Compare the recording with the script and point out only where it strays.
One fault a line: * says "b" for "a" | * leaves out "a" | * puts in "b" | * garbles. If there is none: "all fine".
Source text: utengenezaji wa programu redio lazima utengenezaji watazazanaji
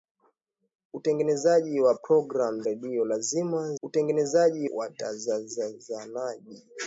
all fine